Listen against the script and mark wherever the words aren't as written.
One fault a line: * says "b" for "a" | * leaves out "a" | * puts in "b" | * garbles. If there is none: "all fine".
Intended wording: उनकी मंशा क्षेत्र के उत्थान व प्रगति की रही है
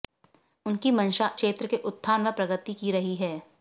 all fine